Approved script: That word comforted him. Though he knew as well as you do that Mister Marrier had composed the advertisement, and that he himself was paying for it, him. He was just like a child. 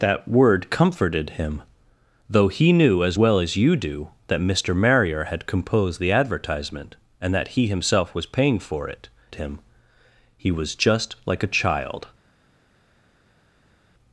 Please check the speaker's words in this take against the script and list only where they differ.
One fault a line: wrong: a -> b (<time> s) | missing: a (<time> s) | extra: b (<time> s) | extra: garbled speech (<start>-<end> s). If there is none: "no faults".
no faults